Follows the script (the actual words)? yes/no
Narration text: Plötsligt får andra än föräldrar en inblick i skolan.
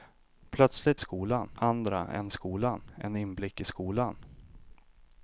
no